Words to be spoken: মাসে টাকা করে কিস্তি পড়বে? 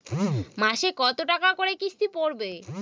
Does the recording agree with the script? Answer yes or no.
no